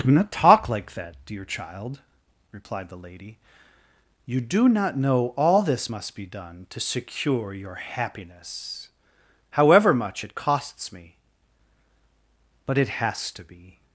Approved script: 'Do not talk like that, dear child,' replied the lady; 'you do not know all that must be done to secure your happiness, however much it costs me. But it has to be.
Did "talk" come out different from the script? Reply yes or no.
no